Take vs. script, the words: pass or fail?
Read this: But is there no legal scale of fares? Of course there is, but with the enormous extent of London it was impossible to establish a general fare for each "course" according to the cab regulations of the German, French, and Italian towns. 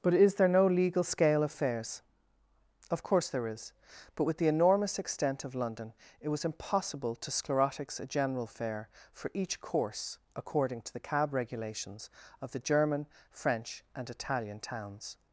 fail